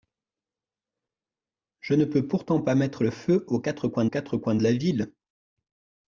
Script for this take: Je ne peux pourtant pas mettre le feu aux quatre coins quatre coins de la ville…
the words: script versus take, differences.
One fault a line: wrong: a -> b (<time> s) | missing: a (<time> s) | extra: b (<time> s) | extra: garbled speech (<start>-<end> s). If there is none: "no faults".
no faults